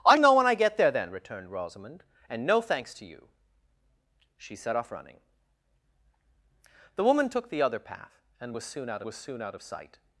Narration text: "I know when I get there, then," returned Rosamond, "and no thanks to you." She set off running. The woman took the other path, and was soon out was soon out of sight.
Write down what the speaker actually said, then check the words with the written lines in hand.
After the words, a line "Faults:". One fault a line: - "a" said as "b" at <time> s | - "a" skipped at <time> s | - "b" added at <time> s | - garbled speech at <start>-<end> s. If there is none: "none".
"I know when I get there, then," returned Rosamond, "and no thanks to you." She set off running. The woman took the other path, and was soon out was soon out of sight.
Faults:
none